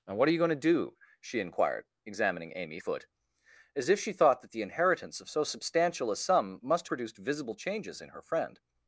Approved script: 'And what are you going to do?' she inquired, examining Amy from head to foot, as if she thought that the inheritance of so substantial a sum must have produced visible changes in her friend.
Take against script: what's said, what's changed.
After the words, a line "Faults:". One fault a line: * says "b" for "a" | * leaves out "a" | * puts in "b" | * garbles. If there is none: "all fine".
'And what are you going to do?' she inquired, examining Amy foot, as if she thought that the inheritance of so substantial a sum must produced visible changes in her friend.
Faults:
* leaves out "from head to"
* leaves out "have"